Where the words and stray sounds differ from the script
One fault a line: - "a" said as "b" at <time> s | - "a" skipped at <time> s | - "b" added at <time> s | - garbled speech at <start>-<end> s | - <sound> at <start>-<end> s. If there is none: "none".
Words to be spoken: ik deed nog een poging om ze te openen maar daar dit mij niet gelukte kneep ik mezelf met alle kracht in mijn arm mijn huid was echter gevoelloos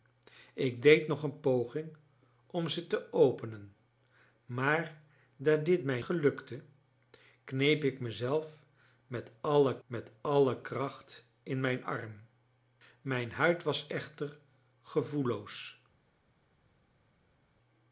- "niet" skipped at 6.0 s
- "met alle" added at 9.9 s